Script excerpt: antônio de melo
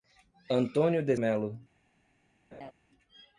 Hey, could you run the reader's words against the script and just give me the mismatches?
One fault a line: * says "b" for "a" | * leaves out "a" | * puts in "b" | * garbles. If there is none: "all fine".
all fine